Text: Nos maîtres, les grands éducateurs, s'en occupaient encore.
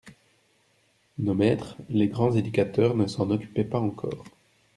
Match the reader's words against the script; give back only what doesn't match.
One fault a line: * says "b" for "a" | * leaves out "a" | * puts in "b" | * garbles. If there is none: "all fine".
* puts in "ne"
* puts in "pas"